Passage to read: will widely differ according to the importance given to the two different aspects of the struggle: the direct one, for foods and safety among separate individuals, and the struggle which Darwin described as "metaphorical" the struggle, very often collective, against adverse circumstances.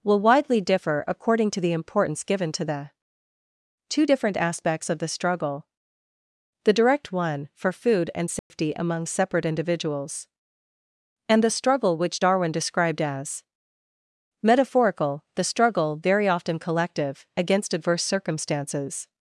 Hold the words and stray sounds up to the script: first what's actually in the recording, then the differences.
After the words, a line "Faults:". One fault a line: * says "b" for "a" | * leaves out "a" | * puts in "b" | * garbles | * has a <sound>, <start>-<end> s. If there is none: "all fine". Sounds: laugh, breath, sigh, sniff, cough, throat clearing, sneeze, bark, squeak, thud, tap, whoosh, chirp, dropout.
will widely differ according to the importance given to the two different aspects of the struggle: the direct one, for food and safety among separate individuals, and the struggle which Darwin described as "metaphorical" the struggle, very often collective, against adverse circumstances.
Faults:
* says "food" for "foods"
* has a dropout, 8.4-8.5 s